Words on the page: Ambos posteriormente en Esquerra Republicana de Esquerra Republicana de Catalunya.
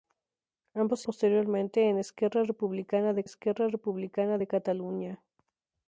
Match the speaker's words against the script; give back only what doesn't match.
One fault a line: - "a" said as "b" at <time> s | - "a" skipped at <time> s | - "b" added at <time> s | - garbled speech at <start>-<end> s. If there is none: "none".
none